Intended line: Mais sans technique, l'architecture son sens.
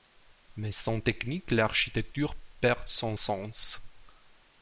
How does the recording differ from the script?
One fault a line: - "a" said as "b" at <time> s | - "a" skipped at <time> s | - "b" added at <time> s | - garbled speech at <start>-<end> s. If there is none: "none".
- "perd" added at 2.6 s